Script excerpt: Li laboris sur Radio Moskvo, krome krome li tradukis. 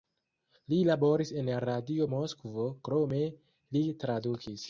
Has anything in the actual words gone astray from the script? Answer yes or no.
yes